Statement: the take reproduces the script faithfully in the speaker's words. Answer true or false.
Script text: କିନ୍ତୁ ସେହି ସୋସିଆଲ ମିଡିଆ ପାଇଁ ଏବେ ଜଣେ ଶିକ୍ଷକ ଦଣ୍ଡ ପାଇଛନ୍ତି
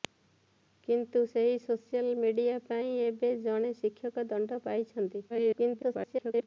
false